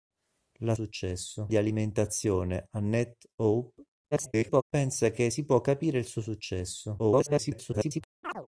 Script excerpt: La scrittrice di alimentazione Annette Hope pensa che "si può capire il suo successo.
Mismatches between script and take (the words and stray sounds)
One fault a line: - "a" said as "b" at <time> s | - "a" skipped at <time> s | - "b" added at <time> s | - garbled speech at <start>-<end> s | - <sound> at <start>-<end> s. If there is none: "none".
- "scrittrice" said as "successo" at 0.7 s
- garbled speech at 4.1-4.6 s
- garbled speech at 7.0-8.0 s
- chirp at 8.2-8.5 s